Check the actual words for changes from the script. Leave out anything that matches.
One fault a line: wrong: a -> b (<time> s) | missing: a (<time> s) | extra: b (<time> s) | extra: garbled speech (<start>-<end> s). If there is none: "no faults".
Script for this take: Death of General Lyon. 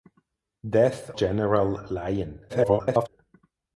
missing: of (1.1 s)
extra: garbled speech (2.5-3.1 s)